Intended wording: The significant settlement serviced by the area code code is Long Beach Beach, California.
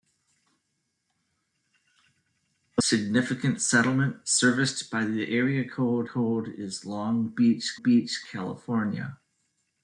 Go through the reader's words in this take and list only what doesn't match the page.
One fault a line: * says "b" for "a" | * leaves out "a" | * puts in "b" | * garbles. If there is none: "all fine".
all fine